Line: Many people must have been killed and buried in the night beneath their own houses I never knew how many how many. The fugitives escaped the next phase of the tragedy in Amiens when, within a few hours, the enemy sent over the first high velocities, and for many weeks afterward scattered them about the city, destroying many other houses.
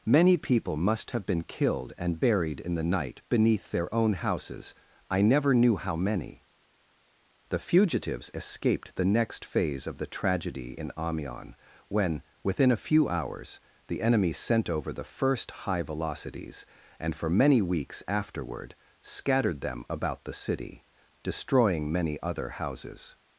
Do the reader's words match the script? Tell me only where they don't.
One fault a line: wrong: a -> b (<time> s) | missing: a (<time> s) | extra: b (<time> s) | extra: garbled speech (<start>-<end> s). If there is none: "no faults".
missing: how many (6.5 s)